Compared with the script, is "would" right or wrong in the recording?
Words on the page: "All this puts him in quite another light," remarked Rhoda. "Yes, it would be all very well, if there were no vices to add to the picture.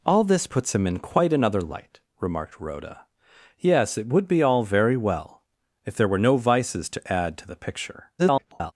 right